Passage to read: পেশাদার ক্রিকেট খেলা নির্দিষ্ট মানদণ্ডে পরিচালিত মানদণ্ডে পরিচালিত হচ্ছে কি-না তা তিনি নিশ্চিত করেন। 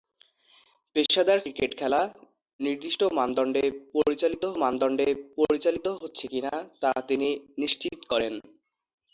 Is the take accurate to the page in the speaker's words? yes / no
yes